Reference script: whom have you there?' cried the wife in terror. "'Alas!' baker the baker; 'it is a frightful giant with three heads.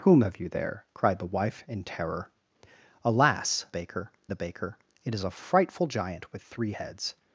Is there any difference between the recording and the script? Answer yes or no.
no